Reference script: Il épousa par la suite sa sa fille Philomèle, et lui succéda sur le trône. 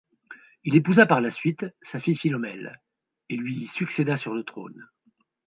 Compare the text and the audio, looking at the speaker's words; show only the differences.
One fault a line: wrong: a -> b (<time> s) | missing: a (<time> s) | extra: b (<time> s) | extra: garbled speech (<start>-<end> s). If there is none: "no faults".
missing: sa (2.0 s)